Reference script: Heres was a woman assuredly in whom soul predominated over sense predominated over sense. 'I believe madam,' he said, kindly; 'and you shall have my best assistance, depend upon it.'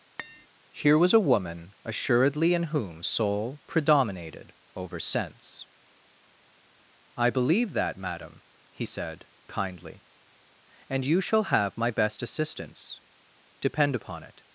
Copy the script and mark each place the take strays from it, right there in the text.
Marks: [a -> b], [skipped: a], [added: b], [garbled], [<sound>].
[tap] [Heres -> Here] was a woman assuredly in whom soul predominated over sense [skipped: predominated over sense.] 'I believe [added: that] madam,' he said, kindly; 'and you shall have my best assistance, depend upon it.'